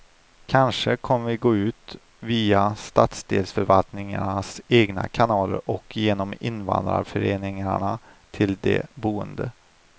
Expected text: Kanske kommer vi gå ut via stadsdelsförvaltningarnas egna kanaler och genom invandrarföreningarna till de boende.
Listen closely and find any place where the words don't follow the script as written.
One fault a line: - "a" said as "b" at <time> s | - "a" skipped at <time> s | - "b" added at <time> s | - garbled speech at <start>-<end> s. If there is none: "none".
none